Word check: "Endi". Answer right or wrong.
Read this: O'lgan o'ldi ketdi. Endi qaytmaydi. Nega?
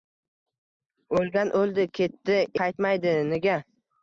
wrong